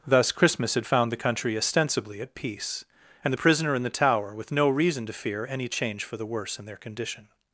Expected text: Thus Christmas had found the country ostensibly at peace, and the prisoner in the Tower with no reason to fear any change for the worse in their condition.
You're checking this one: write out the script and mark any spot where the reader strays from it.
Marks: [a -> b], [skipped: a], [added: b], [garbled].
Thus Christmas had found the country ostensibly at peace, and the prisoner in the Tower with no reason to fear any change for the worse in their condition.